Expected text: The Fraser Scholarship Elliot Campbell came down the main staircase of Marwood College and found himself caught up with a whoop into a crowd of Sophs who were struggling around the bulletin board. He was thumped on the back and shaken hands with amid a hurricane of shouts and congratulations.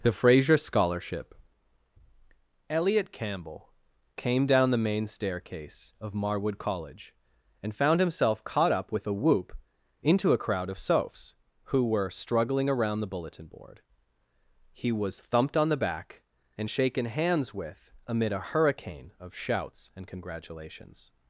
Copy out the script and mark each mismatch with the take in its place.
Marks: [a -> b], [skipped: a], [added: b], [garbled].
The Fraser Scholarship Elliot Campbell came down the main staircase of Marwood College and found himself caught up with a whoop into a crowd of Sophs who were struggling around the bulletin board. He was thumped on the back and shaken hands with amid a hurricane of shouts and congratulations.